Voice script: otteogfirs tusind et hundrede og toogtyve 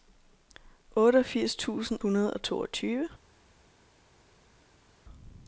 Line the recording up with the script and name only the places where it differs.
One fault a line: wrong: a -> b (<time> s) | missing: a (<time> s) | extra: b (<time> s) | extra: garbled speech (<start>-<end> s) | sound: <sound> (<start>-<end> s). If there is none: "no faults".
missing: et (2.0 s)